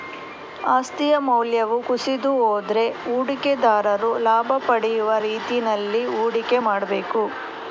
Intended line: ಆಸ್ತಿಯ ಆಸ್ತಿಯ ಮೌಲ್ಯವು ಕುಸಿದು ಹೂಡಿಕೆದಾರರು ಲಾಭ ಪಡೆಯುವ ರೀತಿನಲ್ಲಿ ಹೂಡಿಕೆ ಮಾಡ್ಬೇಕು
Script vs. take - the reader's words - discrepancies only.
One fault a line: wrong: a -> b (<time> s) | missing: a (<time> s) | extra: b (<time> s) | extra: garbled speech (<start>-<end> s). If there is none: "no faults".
missing: ಆಸ್ತಿಯ (1.1 s)
extra: ಹೋದ್ರೆ (2.4 s)